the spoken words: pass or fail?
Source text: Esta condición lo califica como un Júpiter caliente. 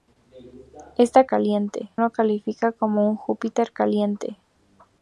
fail